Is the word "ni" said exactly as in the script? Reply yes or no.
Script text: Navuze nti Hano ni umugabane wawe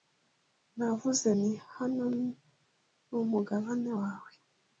yes